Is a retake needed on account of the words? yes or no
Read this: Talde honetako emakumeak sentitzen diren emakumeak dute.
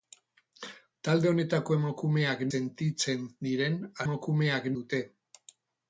no